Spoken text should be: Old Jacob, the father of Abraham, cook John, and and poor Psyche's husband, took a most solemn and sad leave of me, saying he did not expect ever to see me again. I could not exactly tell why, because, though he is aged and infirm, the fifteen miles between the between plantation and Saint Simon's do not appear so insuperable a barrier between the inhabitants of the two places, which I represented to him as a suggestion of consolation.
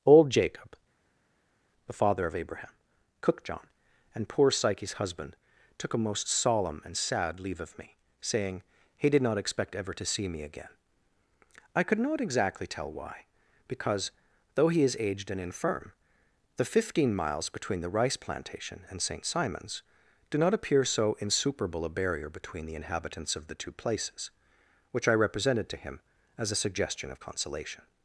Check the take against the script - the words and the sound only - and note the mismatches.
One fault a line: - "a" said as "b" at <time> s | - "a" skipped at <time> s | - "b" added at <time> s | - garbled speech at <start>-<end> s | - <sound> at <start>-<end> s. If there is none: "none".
- "and" skipped at 4.3 s
- "between" said as "rice" at 17.9 s